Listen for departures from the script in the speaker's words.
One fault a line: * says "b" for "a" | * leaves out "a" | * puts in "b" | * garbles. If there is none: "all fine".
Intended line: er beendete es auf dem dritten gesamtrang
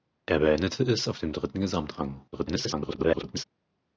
* garbles